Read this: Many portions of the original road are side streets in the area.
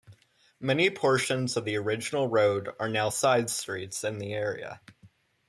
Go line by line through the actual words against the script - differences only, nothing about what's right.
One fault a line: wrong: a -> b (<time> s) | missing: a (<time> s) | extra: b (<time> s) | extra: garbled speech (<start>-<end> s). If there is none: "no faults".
extra: now (2.9 s)